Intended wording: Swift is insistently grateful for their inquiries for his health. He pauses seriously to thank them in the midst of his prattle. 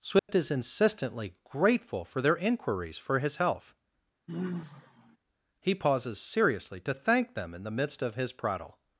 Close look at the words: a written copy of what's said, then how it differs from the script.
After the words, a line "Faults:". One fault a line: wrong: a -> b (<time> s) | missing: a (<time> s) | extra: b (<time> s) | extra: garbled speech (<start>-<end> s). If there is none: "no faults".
Swift is insistently grateful for their inquiries for his health. He pauses seriously to thank them in the midst of his prattle.
Faults:
no faults